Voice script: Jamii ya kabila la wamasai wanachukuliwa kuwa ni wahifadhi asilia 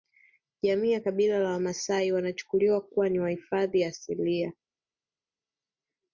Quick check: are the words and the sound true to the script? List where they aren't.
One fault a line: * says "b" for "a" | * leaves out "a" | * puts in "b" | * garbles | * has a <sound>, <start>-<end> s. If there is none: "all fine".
all fine